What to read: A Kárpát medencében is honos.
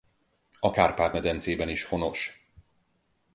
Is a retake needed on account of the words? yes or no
no